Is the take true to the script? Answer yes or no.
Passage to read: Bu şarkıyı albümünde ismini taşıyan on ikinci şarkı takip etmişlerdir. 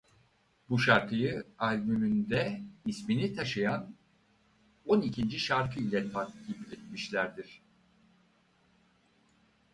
no